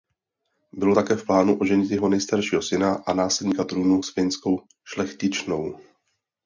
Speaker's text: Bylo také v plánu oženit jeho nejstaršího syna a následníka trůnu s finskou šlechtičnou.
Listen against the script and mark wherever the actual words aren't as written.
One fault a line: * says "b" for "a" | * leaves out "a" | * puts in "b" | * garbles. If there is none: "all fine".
all fine